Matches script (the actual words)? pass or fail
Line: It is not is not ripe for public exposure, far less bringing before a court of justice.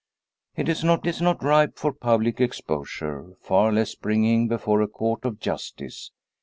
pass